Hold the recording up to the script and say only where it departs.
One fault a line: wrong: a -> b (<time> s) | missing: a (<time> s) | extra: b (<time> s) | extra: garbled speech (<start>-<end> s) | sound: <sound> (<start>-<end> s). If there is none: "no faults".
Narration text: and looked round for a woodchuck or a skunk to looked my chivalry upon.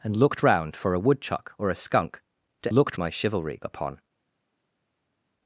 no faults